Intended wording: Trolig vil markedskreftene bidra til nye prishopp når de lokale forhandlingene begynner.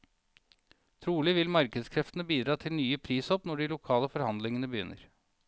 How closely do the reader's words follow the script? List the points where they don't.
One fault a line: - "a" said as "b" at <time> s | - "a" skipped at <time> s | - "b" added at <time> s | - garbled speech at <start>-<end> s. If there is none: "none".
none